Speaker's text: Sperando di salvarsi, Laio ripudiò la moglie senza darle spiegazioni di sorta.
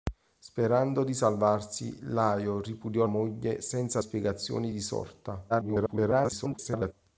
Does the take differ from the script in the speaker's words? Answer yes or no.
yes